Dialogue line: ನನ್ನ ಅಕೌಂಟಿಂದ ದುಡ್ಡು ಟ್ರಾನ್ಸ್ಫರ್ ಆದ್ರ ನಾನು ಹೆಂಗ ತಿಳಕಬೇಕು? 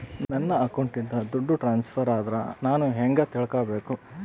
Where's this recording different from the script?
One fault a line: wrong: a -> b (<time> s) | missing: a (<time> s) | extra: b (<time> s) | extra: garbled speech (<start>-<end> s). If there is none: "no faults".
no faults